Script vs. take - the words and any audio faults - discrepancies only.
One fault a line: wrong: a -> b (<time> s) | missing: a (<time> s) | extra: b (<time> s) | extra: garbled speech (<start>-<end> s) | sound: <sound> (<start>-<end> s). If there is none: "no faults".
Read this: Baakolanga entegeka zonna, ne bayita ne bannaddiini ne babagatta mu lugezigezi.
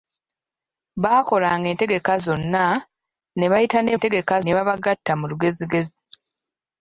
wrong: bannaddiini -> entegeka (4.0 s)